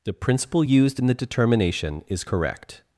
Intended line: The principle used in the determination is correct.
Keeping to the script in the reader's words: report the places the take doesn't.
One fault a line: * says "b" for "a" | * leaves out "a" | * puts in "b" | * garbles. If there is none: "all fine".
all fine